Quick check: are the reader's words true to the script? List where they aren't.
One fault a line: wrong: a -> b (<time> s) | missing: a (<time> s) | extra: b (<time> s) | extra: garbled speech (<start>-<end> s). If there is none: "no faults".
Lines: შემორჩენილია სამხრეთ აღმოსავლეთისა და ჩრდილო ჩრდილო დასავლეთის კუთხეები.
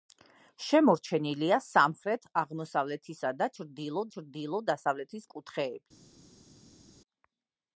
no faults